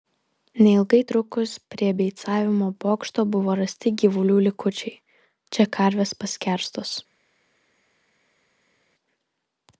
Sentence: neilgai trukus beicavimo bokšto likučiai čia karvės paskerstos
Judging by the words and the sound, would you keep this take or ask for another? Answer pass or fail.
fail